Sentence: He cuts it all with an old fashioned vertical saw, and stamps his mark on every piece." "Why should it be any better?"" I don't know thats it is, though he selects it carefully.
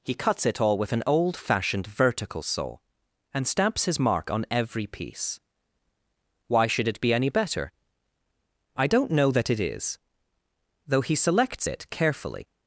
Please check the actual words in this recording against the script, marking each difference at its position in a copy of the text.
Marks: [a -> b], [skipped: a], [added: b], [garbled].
He cuts it all with an old fashioned vertical saw, and stamps his mark on every piece." "Why should it be any better?"" I don't know [thats -> that] it is, though he selects it carefully.